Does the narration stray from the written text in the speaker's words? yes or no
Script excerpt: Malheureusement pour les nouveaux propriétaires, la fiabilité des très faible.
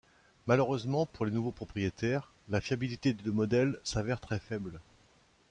yes